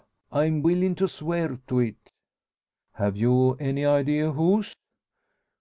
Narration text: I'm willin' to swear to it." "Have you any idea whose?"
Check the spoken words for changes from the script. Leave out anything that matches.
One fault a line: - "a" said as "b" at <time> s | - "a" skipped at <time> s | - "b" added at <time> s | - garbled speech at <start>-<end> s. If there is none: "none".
none